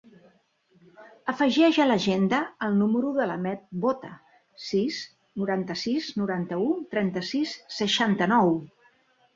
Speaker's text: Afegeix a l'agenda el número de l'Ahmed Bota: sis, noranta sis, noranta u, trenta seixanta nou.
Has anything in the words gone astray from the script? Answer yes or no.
yes